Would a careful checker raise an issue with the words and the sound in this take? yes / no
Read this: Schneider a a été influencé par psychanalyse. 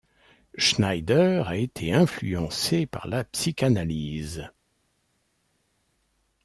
yes